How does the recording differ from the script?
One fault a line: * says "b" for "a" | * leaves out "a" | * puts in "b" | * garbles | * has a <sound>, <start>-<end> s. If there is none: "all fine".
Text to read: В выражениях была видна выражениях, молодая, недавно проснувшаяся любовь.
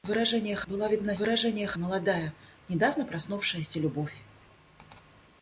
all fine